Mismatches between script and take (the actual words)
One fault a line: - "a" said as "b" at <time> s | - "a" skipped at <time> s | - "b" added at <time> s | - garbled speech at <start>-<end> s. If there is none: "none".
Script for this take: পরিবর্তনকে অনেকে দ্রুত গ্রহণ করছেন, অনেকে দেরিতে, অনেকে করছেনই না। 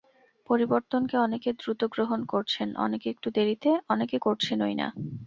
- "একটু" added at 3.1 s